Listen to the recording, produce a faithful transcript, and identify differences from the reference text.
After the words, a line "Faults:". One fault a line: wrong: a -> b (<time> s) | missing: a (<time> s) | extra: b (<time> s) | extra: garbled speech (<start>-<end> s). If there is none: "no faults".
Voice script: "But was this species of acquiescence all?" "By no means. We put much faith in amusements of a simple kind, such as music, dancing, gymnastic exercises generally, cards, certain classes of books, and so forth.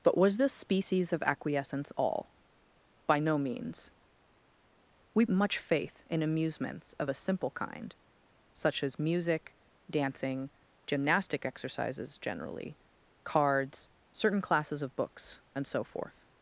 "But was this species of acquiescence all?" "By no means. We much faith in amusements of a simple kind, such as music, dancing, gymnastic exercises generally, cards, certain classes of books, and so forth.
Faults:
missing: put (5.2 s)